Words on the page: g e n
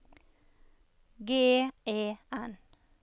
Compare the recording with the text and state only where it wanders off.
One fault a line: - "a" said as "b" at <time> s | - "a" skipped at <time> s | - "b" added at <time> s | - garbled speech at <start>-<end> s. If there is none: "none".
none